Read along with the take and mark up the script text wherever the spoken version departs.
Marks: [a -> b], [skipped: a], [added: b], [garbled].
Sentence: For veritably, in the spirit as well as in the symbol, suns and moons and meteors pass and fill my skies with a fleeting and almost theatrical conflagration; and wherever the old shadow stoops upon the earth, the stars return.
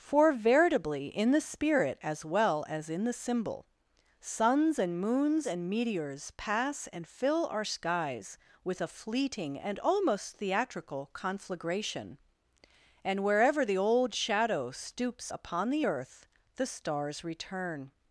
For veritably, in the spirit as well as in the symbol, suns and moons and meteors pass and fill [my -> our] skies with a fleeting and almost theatrical conflagration; and wherever the old shadow stoops upon the earth, the stars return.